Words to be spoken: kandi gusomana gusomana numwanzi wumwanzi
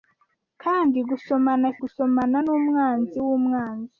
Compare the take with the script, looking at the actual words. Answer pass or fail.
pass